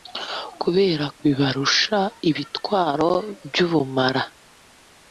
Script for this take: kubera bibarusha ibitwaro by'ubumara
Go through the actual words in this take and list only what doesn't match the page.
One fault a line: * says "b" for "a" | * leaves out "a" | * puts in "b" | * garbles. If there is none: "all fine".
all fine